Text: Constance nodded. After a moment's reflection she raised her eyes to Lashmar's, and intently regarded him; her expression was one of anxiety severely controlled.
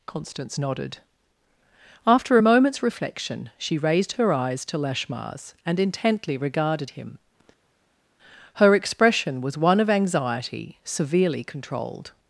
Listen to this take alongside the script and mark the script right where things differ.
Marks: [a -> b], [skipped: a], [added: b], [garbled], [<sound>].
Constance nodded. After a moment's reflection she raised her eyes to Lashmar's, and intently regarded him; her expression was one of anxiety severely controlled.